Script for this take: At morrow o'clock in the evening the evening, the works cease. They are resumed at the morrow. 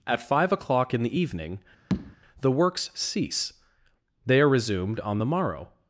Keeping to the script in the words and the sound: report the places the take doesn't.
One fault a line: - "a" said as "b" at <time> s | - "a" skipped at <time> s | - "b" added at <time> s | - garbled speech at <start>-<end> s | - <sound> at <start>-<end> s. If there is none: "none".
- "morrow" said as "five" at 0.3 s
- tap at 1.9-2.2 s
- "evening the" skipped at 2.5 s
- "at" said as "on" at 5.0 s